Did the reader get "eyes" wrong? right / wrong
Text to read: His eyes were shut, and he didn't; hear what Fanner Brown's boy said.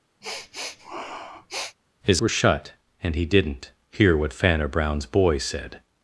wrong